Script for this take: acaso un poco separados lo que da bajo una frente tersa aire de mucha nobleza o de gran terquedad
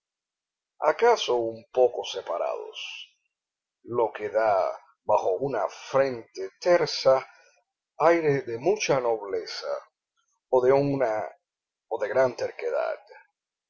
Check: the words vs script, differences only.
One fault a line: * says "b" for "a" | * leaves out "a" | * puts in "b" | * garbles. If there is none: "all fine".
all fine